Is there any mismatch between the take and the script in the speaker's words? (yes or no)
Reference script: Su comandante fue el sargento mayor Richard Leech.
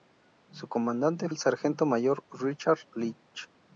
yes